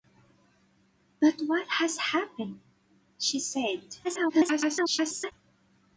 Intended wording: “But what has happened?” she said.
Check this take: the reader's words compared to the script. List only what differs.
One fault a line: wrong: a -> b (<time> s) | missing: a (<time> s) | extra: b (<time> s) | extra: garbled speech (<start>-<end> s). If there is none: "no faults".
extra: garbled speech (4.0-5.3 s)